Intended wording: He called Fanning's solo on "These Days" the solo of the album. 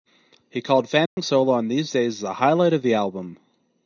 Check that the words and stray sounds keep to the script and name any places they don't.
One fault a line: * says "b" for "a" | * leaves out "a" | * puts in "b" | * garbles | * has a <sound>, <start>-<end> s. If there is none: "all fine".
* has a dropout, 1.1-1.2 s
* says "highlight" for "solo"